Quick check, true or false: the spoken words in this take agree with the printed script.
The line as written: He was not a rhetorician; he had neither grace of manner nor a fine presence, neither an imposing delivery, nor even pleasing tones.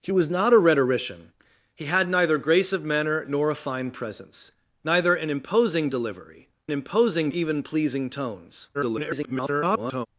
false